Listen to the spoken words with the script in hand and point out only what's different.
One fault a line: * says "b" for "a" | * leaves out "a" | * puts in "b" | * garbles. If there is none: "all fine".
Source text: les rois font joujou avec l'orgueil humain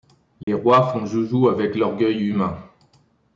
all fine